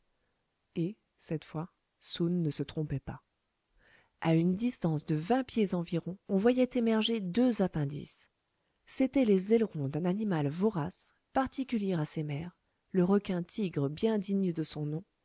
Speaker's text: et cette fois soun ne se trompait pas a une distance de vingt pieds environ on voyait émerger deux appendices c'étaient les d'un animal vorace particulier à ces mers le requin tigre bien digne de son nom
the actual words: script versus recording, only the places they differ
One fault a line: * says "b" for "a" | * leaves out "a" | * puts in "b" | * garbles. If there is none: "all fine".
* puts in "ailerons"